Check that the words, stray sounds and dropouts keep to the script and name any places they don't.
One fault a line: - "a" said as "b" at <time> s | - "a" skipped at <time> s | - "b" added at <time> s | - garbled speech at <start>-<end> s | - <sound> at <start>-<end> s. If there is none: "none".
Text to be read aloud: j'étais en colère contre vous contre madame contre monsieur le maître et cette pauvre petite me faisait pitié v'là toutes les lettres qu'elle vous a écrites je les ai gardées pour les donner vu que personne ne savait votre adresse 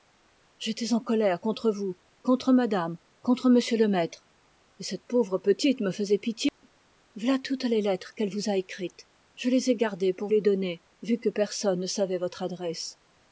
- dropout at 6.5-6.6 s